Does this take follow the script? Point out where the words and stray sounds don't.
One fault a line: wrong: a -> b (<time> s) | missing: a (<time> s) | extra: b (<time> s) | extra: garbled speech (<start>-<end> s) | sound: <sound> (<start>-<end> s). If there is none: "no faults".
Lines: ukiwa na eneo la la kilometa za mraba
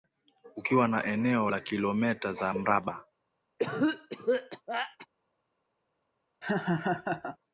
missing: la (1.6 s)
sound: cough (3.6-5.1 s)
sound: laugh (6.4-7.4 s)